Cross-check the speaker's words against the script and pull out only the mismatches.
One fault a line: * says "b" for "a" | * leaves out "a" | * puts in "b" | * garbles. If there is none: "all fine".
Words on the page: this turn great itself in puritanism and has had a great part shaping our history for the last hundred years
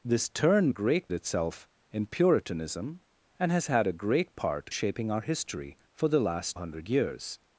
all fine